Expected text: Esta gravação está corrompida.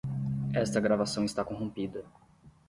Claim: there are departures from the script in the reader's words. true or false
false